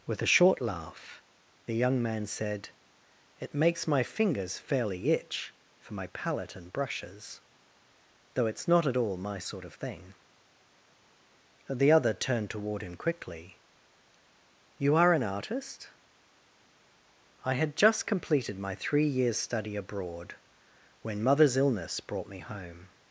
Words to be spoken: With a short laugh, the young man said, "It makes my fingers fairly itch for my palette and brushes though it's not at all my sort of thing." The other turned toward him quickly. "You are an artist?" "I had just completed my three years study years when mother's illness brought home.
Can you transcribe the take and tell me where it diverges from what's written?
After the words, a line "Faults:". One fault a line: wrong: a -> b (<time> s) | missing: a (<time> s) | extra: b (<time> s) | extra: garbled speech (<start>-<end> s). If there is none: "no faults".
With a short laugh, the young man said, "It makes my fingers fairly itch for my palette and brushes though it's not at all my sort of thing." The other turned toward him quickly. "You are an artist?" "I had just completed my three years study abroad when mother's illness brought me home.
Faults:
wrong: years -> abroad (19.7 s)
extra: me (22.3 s)